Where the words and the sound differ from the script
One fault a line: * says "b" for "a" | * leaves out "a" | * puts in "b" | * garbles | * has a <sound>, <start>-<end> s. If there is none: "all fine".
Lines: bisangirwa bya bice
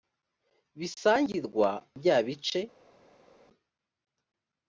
all fine